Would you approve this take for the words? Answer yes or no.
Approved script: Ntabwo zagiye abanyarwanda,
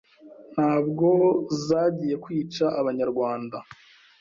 no